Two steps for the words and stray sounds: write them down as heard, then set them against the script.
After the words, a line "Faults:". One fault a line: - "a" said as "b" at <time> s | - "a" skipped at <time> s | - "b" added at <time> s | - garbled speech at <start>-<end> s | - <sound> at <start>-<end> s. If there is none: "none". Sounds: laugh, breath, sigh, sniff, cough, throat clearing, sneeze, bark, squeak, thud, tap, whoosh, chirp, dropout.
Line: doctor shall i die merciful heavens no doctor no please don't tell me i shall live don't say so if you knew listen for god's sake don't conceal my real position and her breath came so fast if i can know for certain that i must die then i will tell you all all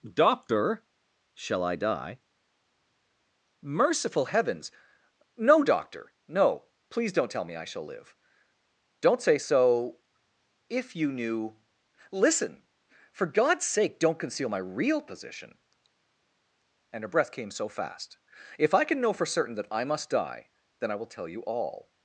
doctor shall i die merciful heavens no doctor no please don't tell me i shall live don't say so if you knew listen for god's sake don't conceal my real position and her breath came so fast if i can know for certain that i must die then i will tell you all
Faults:
- "all" skipped at 21.9 s